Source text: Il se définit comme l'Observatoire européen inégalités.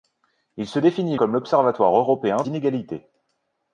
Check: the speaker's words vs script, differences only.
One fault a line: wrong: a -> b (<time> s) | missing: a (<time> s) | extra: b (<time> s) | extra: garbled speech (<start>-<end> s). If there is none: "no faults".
no faults